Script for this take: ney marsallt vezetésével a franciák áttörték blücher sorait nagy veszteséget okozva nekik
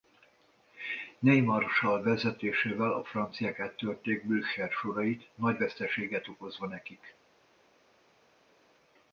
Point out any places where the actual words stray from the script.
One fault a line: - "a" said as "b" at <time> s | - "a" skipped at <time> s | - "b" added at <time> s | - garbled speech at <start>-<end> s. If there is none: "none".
none